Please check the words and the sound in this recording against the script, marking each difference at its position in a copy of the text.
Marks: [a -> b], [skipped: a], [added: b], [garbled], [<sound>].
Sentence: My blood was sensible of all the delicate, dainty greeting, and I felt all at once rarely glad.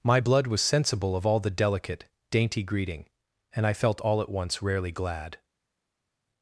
My blood was sensible of all the delicate, dainty greeting, and I felt all at once rarely glad.